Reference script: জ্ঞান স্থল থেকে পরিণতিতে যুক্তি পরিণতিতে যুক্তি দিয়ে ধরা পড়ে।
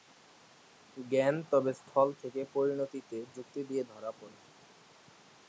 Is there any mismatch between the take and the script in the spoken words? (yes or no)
yes